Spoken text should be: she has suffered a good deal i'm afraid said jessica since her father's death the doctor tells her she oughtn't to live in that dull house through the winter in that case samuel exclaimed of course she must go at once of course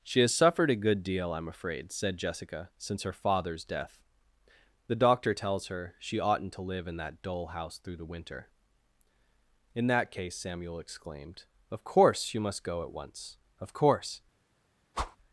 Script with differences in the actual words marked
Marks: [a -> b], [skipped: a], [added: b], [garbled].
she has suffered a good deal i'm afraid said jessica since her father's death the doctor tells her she oughtn't to live in that dull house through the winter in that case samuel exclaimed of course [she -> you] must go at once of course